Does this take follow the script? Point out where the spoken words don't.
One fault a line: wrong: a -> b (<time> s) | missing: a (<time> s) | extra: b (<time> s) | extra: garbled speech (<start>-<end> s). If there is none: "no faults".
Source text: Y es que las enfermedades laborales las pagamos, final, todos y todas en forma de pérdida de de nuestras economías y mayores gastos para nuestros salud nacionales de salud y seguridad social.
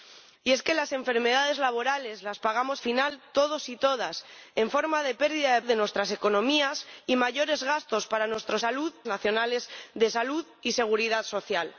no faults